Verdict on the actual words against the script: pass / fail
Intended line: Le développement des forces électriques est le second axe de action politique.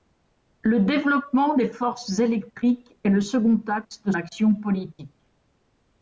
pass